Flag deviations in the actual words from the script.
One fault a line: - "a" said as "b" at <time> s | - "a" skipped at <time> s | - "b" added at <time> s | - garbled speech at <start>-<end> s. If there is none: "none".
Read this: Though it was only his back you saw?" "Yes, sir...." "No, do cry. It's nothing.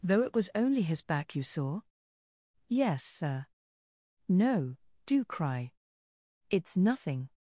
none